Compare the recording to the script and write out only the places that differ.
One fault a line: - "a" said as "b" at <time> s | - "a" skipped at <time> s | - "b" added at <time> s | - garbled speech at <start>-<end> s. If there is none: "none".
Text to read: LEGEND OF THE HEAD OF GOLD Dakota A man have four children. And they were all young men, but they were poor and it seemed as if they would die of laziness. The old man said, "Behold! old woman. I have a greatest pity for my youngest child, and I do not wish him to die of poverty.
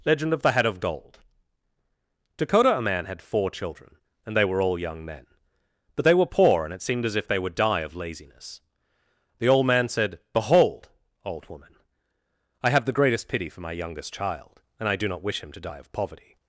- "have" said as "had" at 3.0 s
- "a" said as "the" at 12.8 s